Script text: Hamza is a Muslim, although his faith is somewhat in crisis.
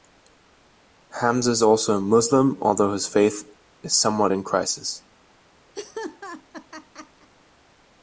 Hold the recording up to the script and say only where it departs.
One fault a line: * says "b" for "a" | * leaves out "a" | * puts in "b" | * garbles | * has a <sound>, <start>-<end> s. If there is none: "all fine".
* puts in "also"
* has a laugh, 5.7-7.3 s